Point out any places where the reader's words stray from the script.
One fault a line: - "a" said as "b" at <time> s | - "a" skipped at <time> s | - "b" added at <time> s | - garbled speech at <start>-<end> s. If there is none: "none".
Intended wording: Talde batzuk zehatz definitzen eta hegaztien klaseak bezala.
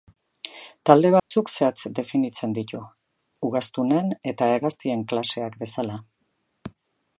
- "ditu ugaztunen" added at 2.6 s